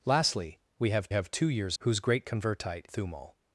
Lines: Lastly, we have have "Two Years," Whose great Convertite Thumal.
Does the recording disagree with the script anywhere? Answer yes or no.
no